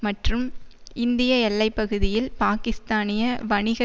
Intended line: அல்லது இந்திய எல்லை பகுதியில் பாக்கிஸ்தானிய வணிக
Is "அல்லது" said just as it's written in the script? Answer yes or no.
no